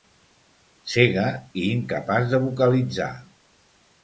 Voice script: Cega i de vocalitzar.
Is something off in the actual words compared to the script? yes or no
yes